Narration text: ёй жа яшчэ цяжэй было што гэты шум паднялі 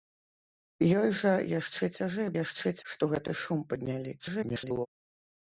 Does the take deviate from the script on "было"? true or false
true